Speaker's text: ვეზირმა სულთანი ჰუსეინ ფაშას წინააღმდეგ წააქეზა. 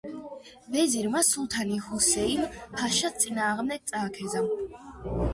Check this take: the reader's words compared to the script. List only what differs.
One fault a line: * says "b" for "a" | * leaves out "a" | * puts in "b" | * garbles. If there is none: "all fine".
all fine